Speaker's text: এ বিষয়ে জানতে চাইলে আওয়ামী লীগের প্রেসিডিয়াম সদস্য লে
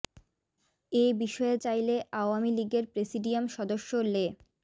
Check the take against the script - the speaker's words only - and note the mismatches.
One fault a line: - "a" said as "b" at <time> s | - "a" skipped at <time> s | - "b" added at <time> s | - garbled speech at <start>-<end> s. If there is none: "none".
- "জানতে" skipped at 1.6 s